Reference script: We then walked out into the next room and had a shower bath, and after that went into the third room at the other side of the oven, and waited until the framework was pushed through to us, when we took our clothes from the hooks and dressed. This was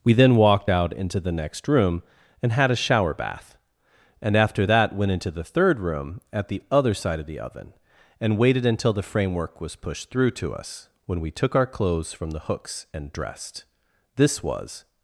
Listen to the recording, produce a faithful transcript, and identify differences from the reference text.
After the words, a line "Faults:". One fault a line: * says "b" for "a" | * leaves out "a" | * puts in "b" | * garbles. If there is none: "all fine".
We then walked out into the next room and had a shower bath, and after that went into the third room at the other side of the oven, and waited until the framework was pushed through to us, when we took our clothes from the hooks and dressed. This was
Faults:
all fine